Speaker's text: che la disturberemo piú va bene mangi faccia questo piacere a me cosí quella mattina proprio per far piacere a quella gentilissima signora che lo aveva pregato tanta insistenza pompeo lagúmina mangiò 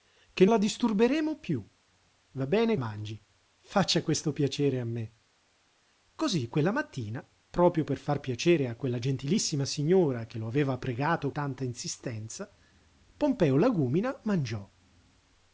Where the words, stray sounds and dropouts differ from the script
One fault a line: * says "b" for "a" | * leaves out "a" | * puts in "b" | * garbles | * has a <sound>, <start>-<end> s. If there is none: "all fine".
all fine